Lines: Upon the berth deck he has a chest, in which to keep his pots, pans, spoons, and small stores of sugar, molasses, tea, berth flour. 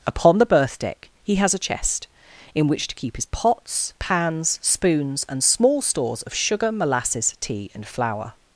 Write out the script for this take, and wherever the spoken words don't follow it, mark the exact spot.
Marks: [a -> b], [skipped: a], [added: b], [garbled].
Upon the berth deck he has a chest, in which to keep his pots, pans, spoons, and small stores of sugar, molasses, tea, [berth -> and] flour.